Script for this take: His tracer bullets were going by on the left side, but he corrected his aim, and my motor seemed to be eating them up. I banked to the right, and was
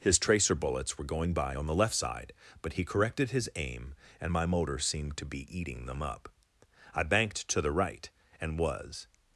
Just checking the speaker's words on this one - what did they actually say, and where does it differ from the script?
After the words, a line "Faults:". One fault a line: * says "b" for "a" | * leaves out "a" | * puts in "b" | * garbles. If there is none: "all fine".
His tracer bullets were going by on the left side, but he corrected his aim, and my motor seemed to be eating them up. I banked to the right, and was
Faults:
all fine